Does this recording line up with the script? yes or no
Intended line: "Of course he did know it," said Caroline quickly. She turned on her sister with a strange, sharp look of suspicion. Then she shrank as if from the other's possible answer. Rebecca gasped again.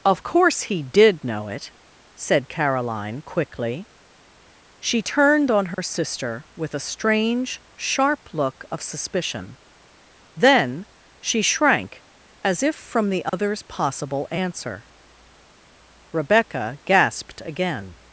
yes